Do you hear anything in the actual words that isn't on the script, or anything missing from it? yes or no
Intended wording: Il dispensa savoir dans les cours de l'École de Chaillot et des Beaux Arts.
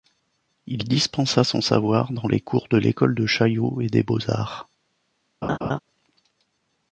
yes